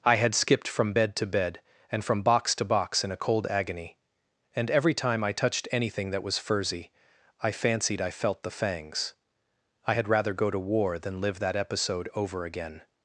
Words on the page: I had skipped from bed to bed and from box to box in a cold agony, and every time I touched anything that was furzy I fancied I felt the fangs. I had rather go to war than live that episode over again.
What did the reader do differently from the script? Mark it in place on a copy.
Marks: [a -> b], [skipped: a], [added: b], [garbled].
I had skipped from bed to bed and from box to box in a cold agony, and every time I touched anything that was furzy I fancied I felt the fangs. I had rather go to war than live that episode over again.